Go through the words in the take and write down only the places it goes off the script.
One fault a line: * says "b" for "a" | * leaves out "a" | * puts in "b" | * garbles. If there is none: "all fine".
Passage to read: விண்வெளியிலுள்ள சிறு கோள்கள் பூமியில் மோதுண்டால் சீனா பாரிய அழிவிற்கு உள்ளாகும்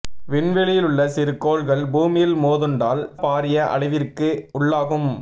* leaves out "சீனா"